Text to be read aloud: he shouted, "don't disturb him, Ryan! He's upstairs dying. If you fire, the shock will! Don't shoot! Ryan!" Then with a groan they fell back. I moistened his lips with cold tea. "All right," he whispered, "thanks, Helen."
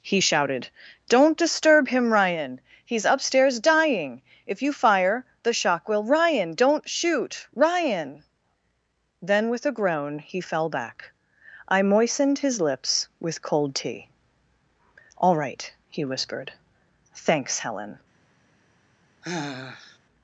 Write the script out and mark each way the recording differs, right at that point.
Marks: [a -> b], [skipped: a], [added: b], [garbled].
he shouted, "don't disturb him, Ryan! He's upstairs dying. If you fire, the shock will! [added: Ryan] Don't shoot! Ryan!" Then with a groan [they -> he] fell back. I moistened his lips with cold tea. "All right," he whispered, "thanks, Helen."